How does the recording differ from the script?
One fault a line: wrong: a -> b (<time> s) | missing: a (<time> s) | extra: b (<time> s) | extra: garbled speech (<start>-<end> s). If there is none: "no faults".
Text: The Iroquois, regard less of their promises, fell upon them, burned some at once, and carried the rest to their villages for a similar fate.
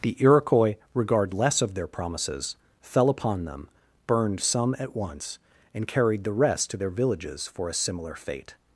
no faults